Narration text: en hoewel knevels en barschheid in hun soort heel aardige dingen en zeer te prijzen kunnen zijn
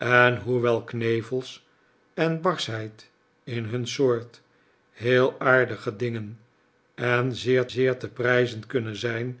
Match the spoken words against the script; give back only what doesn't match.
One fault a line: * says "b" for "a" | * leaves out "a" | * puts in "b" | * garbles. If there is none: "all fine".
* puts in "zeer"